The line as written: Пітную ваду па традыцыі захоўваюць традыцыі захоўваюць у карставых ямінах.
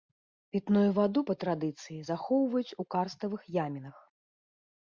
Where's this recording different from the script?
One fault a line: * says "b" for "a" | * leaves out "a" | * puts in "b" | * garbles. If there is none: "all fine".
* leaves out "традыцыі захоўваюць"